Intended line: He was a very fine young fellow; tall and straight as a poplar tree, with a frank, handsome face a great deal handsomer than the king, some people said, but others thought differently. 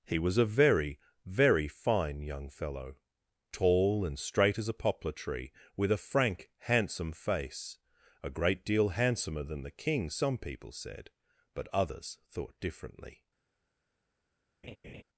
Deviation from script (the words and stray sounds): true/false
true